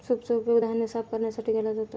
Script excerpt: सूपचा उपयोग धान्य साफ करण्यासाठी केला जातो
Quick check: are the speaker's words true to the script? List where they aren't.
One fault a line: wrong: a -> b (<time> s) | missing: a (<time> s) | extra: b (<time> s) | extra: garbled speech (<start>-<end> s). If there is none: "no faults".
no faults